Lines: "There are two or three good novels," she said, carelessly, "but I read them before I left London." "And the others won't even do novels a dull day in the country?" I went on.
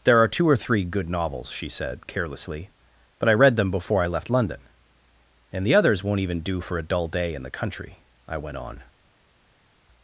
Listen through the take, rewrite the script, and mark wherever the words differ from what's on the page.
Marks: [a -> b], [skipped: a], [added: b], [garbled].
"There are two or three good novels," she said, carelessly, "but I read them before I left London." "And the others won't even do [novels -> for] a dull day in the country?" I went on.